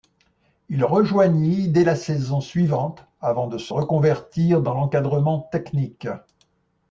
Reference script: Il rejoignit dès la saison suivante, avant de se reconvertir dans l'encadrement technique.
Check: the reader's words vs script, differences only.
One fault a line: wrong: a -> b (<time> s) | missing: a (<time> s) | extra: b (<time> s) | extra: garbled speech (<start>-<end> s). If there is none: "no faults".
no faults